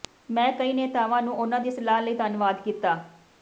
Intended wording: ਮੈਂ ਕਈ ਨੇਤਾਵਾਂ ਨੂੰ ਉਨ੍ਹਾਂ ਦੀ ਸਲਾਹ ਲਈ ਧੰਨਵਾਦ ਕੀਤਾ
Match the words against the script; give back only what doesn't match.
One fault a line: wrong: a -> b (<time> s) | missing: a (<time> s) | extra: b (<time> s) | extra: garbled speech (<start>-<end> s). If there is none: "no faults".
no faults